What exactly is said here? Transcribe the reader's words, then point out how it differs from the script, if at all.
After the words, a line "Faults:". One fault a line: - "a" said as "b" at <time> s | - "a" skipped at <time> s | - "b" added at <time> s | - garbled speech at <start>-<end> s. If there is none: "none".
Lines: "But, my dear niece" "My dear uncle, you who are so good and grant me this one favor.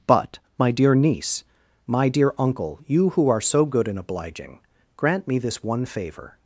"But, my dear niece" "My dear uncle, you who are so good and obliging, grant me this one favor.
Faults:
- "obliging" added at 4.0 s